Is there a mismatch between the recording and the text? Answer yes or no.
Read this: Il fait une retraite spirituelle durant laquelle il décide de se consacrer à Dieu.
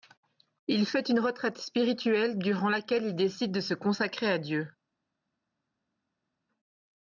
no